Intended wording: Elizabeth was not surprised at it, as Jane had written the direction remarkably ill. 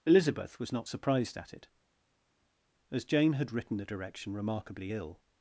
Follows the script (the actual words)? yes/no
yes